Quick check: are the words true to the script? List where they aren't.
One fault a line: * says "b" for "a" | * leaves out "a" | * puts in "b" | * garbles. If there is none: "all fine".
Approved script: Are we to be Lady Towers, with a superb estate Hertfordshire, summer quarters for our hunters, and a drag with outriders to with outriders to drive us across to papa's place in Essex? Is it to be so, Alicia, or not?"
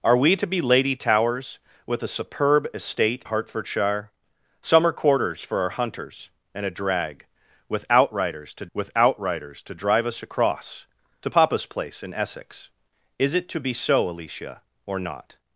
all fine